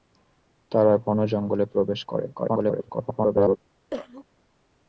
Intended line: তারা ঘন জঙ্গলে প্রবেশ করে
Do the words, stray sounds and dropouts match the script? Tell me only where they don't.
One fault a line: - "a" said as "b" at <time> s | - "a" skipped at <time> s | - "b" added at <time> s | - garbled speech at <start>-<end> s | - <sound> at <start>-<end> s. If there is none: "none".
- garbled speech at 2.3-3.6 s
- cough at 3.9-4.2 s